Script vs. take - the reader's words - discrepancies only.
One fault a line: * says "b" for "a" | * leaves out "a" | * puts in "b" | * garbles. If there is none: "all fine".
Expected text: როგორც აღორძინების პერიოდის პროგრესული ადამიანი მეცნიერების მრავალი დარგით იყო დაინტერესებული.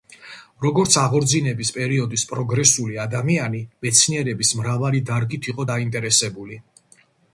all fine